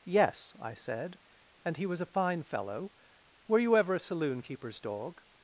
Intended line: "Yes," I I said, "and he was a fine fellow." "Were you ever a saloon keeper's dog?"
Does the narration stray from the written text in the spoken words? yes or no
yes